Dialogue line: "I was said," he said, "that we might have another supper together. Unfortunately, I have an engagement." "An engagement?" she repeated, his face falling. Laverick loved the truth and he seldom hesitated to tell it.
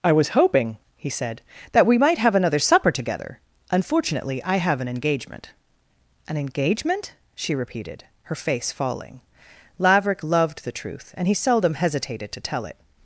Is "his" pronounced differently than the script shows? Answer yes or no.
yes